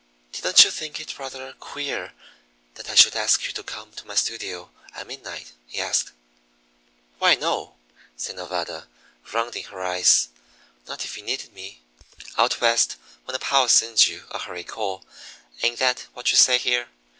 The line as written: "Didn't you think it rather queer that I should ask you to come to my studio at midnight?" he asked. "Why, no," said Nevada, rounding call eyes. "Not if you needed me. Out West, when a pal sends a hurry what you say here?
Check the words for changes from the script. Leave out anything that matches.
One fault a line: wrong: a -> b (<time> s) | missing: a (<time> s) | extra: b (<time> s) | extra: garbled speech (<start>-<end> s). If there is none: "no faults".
wrong: call -> her (9.7 s)
extra: you (14.1 s)
extra: call ain't that (14.6 s)